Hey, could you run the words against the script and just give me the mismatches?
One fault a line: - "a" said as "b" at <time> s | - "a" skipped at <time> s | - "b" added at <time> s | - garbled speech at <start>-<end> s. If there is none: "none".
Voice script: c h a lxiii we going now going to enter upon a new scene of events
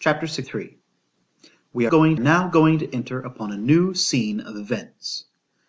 none